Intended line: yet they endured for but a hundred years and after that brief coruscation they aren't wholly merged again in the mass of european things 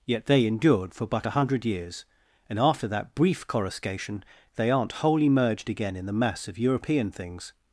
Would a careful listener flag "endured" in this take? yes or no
no